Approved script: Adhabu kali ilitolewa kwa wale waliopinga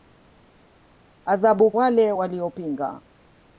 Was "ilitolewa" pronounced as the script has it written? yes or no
no